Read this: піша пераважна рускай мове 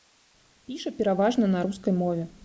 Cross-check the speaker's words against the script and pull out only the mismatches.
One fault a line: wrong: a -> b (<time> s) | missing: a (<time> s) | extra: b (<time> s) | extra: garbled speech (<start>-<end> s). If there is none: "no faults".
extra: на (1.5 s)